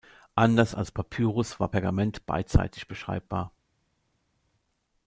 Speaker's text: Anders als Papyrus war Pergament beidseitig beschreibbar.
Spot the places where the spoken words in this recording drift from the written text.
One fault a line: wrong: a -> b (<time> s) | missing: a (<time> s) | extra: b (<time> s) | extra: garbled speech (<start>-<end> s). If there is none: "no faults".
no faults